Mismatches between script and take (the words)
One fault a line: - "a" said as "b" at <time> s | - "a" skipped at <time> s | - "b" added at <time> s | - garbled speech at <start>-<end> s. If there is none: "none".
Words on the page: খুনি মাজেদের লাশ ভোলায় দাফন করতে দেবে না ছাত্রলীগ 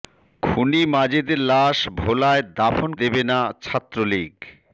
- "করতে" skipped at 2.9 s